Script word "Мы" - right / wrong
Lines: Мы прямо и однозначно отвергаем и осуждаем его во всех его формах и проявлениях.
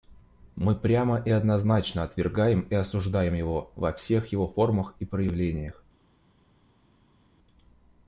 right